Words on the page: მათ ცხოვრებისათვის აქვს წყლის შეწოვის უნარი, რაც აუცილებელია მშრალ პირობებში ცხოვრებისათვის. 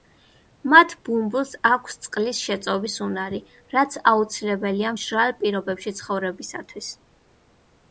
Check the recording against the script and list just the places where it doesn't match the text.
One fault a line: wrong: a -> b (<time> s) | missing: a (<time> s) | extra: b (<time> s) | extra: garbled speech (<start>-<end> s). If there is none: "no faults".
wrong: ცხოვრებისათვის -> ბუმბულს (1.1 s)